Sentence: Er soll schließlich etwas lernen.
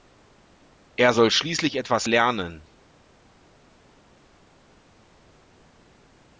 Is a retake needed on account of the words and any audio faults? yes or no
no